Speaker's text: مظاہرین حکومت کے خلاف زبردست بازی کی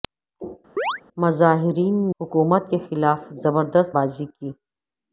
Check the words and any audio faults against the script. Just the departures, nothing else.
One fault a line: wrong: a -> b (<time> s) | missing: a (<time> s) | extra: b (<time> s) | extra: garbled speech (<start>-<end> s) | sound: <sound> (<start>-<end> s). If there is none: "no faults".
sound: chirp (0.8-1.0 s)